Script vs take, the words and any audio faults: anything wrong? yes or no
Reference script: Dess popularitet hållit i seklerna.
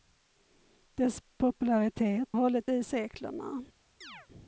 yes